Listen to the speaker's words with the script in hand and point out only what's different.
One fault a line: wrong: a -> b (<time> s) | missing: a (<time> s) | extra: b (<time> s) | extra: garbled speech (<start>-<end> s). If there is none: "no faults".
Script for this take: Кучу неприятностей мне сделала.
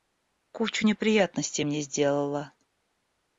no faults